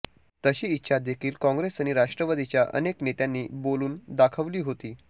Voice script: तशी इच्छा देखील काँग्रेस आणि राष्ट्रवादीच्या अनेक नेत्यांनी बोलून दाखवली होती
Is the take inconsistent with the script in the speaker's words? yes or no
no